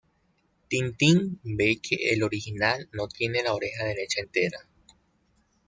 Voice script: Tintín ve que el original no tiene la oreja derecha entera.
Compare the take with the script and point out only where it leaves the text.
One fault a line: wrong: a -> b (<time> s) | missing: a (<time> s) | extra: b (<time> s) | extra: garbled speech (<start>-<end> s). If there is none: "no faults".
no faults